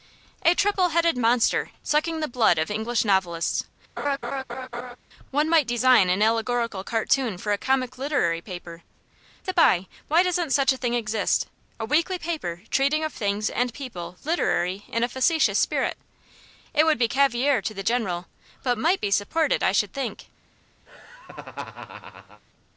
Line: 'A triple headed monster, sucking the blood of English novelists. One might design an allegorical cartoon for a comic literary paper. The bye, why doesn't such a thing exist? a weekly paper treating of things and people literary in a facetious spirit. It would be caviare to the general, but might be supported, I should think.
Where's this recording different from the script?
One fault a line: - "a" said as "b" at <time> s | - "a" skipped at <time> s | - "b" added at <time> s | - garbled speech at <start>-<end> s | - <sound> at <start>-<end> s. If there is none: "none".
- laugh at 4.0-5.0 s
- laugh at 20.9-22.4 s